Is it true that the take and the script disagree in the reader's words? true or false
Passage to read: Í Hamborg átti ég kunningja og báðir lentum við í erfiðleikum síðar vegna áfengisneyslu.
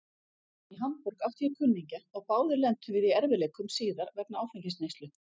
false